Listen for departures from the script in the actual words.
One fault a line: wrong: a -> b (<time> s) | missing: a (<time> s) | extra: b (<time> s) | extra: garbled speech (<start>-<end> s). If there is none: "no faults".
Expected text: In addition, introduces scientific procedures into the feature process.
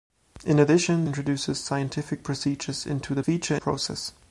no faults